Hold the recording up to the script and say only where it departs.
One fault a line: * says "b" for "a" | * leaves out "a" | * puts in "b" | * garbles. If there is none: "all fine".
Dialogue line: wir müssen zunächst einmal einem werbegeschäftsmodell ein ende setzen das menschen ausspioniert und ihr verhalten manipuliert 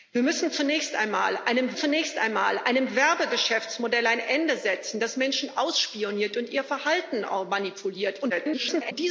* puts in "zunächst einmal einem"
* garbles